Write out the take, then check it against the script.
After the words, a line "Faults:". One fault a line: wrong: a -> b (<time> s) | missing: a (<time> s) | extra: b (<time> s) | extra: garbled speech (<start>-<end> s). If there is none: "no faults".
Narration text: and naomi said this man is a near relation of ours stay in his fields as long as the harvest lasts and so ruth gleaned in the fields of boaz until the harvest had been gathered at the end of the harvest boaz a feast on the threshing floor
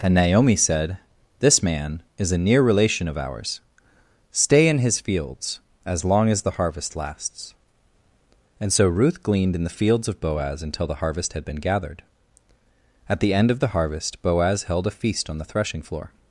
and naomi said this man is a near relation of ours stay in his fields as long as the harvest lasts and so ruth gleaned in the fields of boaz until the harvest had been gathered at the end of the harvest boaz held a feast on the threshing floor
Faults:
extra: held (14.6 s)